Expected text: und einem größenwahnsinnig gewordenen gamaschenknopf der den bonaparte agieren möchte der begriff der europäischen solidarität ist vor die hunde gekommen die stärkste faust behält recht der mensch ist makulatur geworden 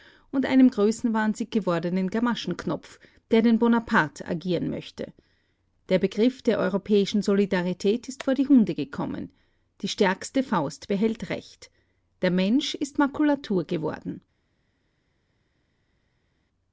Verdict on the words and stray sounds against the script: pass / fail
pass